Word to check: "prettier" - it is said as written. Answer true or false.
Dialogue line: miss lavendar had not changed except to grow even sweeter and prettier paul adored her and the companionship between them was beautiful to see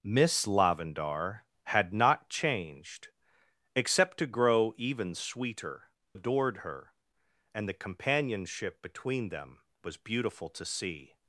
false